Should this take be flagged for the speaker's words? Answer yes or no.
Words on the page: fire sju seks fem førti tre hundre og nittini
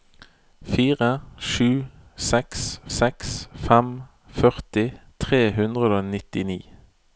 yes